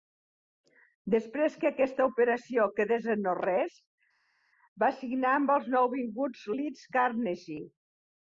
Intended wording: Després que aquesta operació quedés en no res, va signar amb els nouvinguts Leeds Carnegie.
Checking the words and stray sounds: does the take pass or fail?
pass